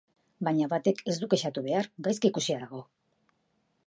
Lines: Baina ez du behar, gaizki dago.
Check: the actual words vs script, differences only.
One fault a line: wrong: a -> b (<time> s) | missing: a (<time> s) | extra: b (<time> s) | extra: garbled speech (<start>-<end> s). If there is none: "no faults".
extra: batek (0.7 s)
extra: kexatu (1.3 s)
extra: ikusia (2.3 s)